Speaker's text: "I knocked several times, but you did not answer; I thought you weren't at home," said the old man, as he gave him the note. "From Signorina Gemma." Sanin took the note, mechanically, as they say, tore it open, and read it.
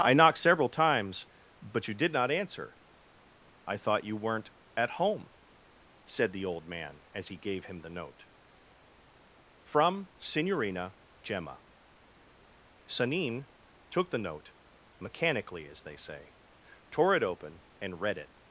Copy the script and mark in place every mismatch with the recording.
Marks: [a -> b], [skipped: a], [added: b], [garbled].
"I knocked several times, but you did not answer; I thought you weren't at home," said the old man, as he gave him the note. "From Signorina Gemma." Sanin took the note, mechanically, as they say, tore it open, and read it.